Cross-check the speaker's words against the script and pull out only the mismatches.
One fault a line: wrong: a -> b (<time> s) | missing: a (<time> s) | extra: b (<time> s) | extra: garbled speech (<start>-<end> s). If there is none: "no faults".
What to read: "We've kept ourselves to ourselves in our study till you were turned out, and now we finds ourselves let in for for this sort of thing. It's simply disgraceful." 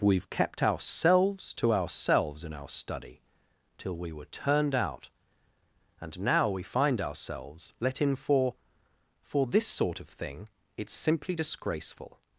wrong: you -> we (4.0 s)
wrong: finds -> find (6.6 s)